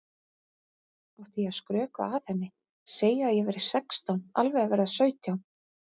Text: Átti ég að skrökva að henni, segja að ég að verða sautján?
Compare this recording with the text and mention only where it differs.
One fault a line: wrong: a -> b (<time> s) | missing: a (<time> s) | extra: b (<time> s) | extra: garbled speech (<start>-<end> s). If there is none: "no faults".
extra: væri sextán alveg (3.5 s)